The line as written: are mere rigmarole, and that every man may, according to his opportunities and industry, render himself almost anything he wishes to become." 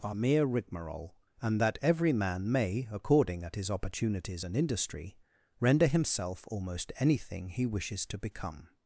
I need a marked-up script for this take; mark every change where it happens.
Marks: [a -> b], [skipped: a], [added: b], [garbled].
are mere rigmarole, and that every man may, according [to -> at] his opportunities and industry, render himself almost anything he wishes to become."